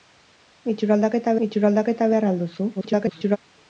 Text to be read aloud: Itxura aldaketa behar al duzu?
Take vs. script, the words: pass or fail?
fail